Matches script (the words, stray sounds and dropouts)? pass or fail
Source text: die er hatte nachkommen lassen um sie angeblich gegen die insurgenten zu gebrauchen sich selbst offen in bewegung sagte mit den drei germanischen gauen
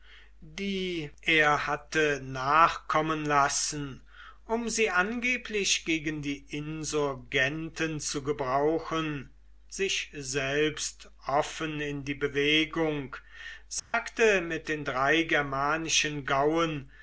fail